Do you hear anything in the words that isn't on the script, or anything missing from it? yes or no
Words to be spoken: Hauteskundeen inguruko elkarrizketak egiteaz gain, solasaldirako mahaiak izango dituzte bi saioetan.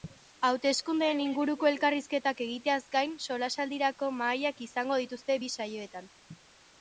no